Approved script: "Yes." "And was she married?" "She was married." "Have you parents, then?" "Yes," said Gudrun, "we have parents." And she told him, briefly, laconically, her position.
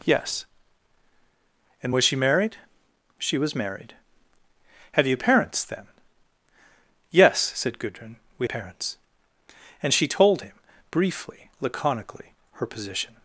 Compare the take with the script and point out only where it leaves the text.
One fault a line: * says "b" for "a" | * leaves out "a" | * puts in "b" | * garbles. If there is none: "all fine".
* leaves out "have"